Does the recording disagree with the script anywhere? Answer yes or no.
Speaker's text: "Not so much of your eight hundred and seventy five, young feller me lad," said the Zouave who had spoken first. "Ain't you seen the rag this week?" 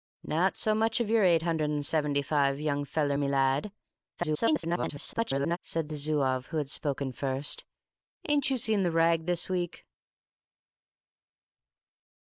yes